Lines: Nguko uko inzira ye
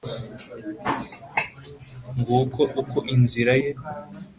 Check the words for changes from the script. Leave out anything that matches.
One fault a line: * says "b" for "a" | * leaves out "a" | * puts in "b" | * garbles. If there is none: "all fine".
all fine